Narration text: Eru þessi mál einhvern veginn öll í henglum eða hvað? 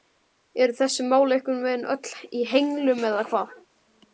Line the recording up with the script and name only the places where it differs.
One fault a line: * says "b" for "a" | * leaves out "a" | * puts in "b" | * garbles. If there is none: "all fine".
all fine